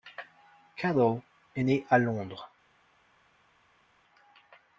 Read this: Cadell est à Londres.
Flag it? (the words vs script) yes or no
yes